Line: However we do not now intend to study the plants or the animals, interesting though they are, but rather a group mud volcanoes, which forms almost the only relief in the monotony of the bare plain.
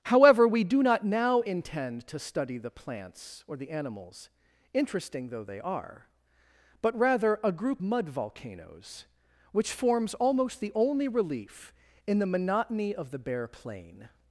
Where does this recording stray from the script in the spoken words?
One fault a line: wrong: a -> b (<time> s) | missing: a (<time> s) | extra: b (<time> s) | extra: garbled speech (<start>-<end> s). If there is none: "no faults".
no faults